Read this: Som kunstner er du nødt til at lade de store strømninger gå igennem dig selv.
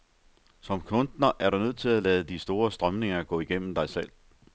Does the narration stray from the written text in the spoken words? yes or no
no